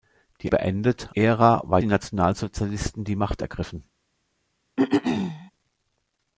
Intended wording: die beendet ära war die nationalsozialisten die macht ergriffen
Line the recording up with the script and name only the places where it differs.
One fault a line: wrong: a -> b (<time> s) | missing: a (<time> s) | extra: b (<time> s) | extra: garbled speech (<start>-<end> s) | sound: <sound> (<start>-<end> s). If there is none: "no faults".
sound: throat clearing (4.8-5.5 s)